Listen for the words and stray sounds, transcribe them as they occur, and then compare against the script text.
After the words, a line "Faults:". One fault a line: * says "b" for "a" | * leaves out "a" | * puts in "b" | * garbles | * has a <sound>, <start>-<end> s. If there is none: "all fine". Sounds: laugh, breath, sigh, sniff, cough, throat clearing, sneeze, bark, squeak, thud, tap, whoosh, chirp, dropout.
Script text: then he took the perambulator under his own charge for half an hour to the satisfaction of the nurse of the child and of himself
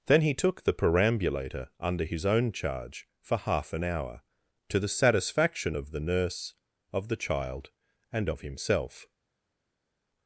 then he took the perambulator under his own charge for half an hour to the satisfaction of the nurse of the child and of himself
Faults:
all fine